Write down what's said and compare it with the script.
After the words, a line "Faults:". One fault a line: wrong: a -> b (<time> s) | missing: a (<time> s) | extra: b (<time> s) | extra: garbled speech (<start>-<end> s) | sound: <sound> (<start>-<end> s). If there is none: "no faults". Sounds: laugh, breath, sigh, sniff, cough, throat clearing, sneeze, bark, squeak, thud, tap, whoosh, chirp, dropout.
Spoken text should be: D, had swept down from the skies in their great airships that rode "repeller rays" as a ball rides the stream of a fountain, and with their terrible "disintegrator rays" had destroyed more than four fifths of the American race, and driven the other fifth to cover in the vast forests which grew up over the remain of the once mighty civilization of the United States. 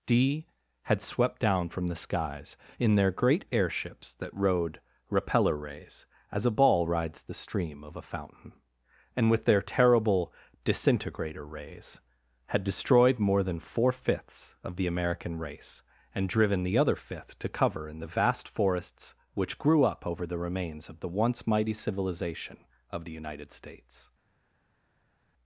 D, had swept down from the skies in their great airships that rode "repeller rays" as a ball rides the stream of a fountain, and with their terrible "disintegrator rays" had destroyed more than four fifths of the American race, and driven the other fifth to cover in the vast forests which grew up over the remains of the once mighty civilization of the United States.
Faults:
wrong: remain -> remains (20.4 s)